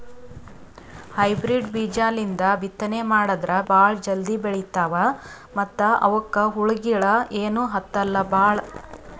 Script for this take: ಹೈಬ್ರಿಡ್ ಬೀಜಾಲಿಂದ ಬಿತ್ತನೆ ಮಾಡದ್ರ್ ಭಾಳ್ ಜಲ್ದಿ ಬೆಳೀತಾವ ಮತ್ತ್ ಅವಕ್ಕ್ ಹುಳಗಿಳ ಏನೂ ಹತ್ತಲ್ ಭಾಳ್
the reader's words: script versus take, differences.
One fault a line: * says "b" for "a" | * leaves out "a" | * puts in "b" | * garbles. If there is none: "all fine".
all fine